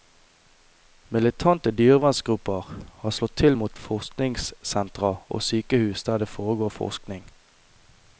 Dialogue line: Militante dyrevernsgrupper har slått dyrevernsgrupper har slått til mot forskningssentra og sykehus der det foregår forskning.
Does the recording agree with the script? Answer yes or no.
no